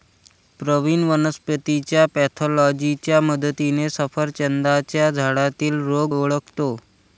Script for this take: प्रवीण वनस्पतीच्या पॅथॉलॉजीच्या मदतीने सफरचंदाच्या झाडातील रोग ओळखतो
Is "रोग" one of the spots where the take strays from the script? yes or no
no